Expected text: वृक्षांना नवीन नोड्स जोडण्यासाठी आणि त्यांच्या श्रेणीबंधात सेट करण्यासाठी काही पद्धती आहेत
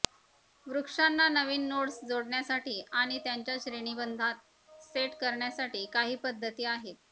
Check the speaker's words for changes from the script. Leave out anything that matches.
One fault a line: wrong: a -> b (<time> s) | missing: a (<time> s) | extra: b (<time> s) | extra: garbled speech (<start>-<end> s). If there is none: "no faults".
no faults